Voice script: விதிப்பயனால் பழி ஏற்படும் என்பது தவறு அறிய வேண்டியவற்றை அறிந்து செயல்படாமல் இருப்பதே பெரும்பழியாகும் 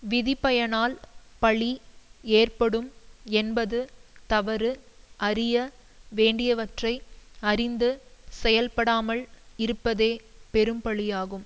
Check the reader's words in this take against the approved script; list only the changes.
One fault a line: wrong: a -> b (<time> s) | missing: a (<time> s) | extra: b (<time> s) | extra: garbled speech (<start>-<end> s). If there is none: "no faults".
no faults